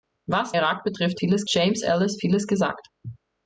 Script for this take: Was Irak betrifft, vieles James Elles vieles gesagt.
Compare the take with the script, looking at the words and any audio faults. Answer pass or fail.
pass